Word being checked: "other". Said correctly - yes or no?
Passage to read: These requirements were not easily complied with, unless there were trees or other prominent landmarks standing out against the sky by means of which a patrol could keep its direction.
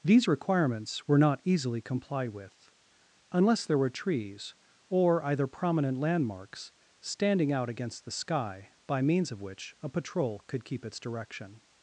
no